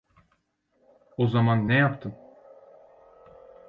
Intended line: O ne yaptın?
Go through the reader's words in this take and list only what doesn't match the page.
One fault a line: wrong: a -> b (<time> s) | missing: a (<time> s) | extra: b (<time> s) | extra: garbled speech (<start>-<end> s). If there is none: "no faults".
extra: zaman (1.3 s)